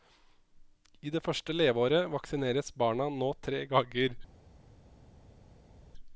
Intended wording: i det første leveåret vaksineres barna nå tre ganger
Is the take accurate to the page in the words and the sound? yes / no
yes